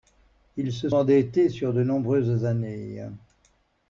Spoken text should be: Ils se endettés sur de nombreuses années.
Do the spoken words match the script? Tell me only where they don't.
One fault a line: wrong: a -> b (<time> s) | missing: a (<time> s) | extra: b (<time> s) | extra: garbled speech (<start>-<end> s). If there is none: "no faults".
no faults